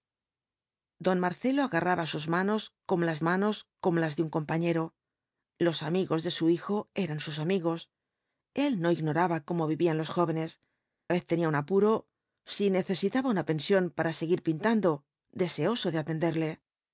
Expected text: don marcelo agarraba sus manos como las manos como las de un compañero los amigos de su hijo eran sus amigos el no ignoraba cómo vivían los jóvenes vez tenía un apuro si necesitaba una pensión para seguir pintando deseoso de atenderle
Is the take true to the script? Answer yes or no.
yes